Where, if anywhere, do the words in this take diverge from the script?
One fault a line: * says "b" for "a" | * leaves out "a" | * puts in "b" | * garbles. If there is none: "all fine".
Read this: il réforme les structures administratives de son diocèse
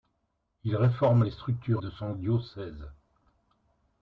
* leaves out "administratives"